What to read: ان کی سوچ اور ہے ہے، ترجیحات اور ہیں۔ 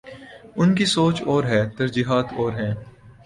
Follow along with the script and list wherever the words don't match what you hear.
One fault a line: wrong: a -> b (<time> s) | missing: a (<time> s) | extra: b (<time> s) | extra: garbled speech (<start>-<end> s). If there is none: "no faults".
missing: ہے (1.6 s)